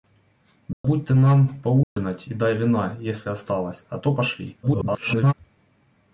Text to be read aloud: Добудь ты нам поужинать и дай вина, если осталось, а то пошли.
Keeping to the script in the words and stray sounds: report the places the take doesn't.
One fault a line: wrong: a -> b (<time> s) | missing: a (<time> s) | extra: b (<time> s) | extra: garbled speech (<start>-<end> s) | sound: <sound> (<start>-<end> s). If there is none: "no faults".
sound: dropout (0.7-0.8 s)
sound: dropout (1.8-2.0 s)
extra: garbled speech (4.6-5.3 s)